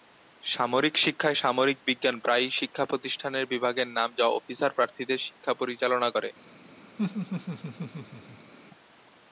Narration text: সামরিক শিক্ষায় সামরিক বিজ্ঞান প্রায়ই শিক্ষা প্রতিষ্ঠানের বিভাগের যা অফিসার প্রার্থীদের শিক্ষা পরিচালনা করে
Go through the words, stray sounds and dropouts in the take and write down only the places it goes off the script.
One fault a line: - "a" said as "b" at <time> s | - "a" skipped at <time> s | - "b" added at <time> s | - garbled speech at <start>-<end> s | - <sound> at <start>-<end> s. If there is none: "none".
- "নাম" added at 4.0 s
- laugh at 7.0-8.5 s